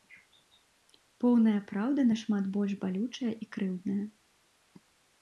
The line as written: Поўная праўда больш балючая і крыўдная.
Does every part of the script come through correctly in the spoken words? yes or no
no